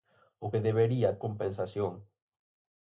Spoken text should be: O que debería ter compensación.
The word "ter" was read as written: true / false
false